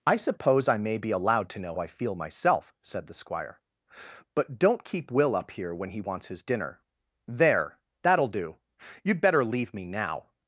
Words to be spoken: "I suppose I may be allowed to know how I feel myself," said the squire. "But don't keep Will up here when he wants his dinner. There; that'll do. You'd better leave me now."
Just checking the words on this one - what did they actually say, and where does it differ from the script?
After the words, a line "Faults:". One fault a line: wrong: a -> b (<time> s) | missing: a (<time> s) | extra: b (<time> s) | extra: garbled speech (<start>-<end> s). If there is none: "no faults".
"I suppose I may be allowed to know I feel myself," said the squire. "But don't keep Will up here when he wants his dinner. There; that'll do. You'd better leave me now."
Faults:
missing: how (1.8 s)